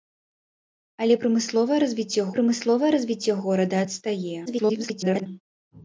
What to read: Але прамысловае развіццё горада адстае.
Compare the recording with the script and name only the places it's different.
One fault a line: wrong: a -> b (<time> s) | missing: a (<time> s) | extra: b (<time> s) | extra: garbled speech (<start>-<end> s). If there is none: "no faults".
extra: прамысловае развіццё (2.4 s)
extra: garbled speech (4.5-5.3 s)